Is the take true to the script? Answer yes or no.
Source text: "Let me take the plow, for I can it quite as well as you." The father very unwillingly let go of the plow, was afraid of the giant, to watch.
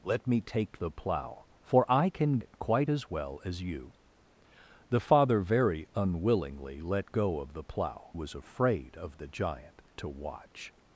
yes